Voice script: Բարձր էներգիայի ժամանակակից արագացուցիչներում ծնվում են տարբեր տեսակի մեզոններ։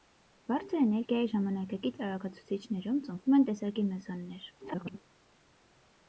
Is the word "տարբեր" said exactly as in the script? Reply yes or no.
no